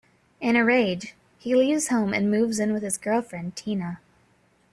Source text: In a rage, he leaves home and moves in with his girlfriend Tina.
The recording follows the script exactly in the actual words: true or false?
true